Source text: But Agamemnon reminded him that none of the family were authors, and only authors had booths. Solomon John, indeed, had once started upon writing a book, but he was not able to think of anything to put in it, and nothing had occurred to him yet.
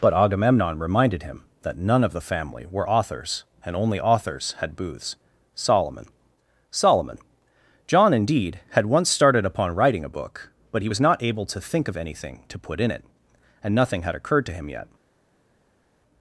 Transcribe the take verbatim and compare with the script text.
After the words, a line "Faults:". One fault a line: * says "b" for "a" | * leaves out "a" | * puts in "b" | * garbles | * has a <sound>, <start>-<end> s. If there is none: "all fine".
But Agamemnon reminded him that none of the family were authors, and only authors had booths. Solomon Solomon John, indeed, had once started upon writing a book, but he was not able to think of anything to put in it, and nothing had occurred to him yet.
Faults:
* puts in "Solomon"